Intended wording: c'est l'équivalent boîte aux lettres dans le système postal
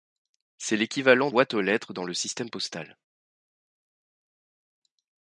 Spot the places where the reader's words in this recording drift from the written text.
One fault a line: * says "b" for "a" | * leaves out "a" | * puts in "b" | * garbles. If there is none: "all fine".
all fine